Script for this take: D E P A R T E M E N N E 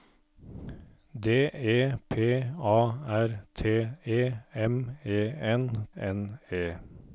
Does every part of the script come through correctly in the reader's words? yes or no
yes